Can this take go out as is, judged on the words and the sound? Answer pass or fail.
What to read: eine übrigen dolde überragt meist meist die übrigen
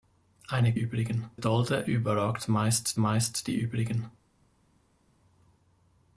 pass